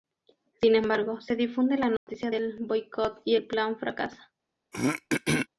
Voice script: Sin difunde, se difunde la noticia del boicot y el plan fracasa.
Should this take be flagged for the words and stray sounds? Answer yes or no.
yes